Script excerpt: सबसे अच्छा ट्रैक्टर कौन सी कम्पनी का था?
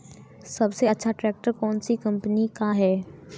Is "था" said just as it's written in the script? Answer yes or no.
no